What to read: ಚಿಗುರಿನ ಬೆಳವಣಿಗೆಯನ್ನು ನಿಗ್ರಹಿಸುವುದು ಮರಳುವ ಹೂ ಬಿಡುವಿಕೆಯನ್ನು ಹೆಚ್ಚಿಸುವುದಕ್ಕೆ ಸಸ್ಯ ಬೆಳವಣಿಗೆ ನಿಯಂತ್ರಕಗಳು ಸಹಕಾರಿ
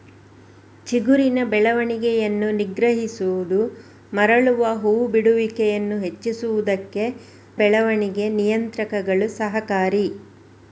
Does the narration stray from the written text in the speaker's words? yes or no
yes